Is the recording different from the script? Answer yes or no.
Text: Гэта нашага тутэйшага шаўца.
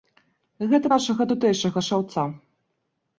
no